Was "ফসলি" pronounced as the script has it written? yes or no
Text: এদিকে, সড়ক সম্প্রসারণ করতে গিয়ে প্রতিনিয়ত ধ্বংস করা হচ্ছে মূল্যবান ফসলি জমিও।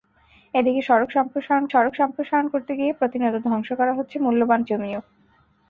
no